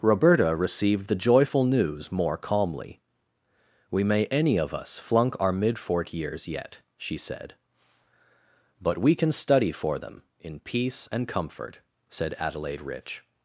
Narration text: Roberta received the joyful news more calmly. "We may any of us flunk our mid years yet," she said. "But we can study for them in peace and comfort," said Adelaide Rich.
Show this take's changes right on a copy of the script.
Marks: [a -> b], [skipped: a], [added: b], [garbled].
Roberta received the joyful news more calmly. "We may any of us flunk our mid [added: fort] years yet," she said. "But we can study for them in peace and comfort," said Adelaide Rich.